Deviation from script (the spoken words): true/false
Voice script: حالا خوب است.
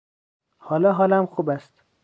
true